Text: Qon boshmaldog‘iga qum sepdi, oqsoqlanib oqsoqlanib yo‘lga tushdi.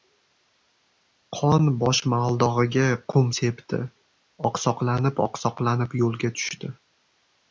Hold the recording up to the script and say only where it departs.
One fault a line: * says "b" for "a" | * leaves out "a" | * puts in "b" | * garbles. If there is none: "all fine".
all fine